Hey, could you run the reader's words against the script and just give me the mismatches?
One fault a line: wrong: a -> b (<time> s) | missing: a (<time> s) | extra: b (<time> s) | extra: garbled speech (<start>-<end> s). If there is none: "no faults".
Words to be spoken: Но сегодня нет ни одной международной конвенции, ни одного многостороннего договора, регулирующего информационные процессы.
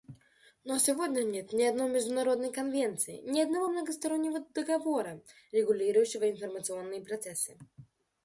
no faults